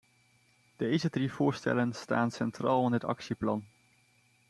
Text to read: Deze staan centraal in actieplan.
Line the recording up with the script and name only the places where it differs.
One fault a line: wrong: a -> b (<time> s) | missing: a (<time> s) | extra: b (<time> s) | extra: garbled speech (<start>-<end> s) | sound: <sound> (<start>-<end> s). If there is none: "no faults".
extra: drie voorstellen (1.1 s)
extra: het (2.9 s)